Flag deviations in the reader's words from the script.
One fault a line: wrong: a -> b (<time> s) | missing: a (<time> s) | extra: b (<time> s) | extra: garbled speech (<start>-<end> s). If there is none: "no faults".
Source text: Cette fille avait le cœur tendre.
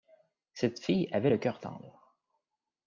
no faults